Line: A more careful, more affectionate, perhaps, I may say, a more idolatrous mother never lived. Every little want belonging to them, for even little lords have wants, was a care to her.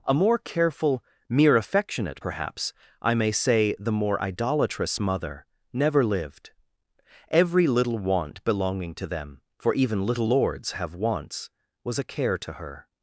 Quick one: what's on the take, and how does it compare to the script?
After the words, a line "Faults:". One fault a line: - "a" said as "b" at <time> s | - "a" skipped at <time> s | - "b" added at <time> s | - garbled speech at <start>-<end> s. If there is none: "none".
A more careful, mere affectionate, perhaps, I may say, the more idolatrous mother never lived. Every little want belonging to them, for even little lords have wants, was a care to her.
Faults:
- "more" said as "mere" at 1.3 s
- "a" said as "the" at 3.8 s